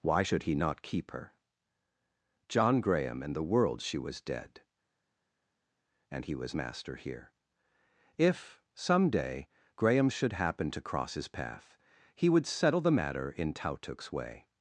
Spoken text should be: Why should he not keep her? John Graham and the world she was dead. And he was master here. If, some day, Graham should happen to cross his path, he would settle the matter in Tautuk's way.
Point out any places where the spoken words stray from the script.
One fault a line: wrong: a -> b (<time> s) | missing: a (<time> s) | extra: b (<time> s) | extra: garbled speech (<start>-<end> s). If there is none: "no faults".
no faults